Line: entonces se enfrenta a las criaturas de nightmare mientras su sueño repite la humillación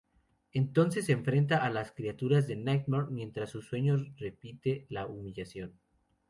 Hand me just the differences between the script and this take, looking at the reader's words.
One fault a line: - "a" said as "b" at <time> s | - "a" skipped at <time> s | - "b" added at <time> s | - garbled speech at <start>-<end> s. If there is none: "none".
none